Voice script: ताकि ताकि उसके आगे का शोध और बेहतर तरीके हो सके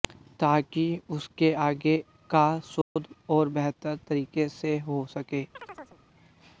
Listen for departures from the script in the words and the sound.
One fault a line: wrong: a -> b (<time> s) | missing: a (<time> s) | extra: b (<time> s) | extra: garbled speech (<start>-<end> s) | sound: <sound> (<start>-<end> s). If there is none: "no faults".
missing: ताकि (0.8 s)
sound: dropout (2.8-3.0 s)
extra: से (4.5 s)
sound: chirp (5.5-6.0 s)